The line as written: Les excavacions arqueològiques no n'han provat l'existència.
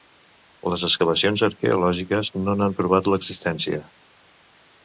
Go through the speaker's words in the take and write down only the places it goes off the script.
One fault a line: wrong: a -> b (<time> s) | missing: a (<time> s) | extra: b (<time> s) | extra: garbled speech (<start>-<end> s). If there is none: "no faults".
no faults